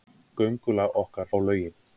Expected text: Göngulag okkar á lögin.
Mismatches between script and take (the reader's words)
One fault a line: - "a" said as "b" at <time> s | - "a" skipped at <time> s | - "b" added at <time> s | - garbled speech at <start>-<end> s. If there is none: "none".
none